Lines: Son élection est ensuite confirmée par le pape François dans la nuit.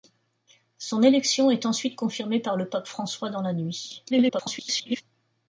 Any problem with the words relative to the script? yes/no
yes